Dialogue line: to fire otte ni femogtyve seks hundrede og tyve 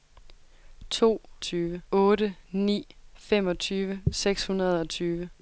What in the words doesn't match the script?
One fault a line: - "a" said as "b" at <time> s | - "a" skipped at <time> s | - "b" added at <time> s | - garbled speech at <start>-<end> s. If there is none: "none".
- "fire" said as "tyve" at 1.4 s